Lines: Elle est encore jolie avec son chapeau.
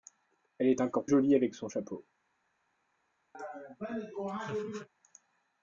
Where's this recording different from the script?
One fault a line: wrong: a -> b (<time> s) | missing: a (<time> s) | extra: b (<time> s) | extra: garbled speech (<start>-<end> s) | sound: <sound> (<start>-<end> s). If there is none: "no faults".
sound: laugh (3.3-4.9 s)